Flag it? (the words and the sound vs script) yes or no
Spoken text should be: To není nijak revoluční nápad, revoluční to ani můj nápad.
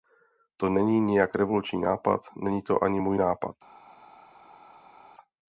yes